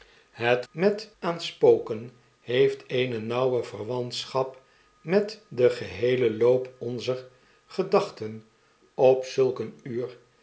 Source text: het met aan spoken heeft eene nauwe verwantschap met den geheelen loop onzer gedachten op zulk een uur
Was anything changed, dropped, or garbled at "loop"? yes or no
no